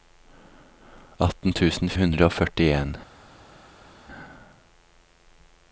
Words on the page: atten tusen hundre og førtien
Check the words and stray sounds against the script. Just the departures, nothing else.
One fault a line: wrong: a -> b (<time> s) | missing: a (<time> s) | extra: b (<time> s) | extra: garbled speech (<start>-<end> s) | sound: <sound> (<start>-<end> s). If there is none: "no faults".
no faults